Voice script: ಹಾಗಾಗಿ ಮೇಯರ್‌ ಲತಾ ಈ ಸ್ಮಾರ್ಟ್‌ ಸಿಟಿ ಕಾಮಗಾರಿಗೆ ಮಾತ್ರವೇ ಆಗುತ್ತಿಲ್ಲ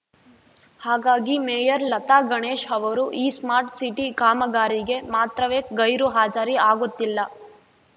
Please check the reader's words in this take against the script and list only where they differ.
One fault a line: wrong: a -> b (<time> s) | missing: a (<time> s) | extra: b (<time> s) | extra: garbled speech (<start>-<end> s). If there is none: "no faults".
extra: ಗಣೇಶ್ ಅವರು (2.3 s)
extra: ಗೈರು ಹಾಜರಿ (5.8 s)